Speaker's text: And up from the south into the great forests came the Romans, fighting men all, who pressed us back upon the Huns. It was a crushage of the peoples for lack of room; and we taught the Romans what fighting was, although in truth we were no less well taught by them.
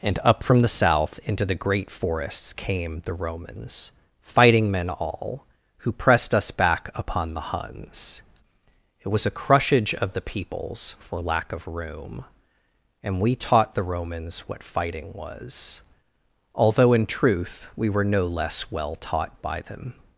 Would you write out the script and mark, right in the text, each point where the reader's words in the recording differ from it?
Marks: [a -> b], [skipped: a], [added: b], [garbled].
And up from the south into the great forests came the Romans, fighting men all, who pressed us back upon the Huns. It was a crushage of the peoples for lack of room; and we taught the Romans what fighting was, although in truth we were no less well taught by them.